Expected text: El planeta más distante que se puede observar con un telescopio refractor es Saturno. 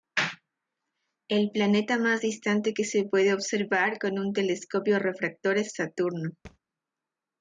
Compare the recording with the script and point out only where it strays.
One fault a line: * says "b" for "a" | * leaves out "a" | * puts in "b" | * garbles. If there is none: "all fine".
all fine